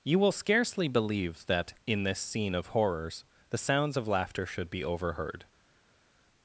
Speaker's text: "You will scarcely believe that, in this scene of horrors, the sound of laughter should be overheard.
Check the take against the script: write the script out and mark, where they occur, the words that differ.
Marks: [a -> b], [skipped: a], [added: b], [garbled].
"You will scarcely believe that, in this scene of horrors, the [sound -> sounds] of laughter should be overheard.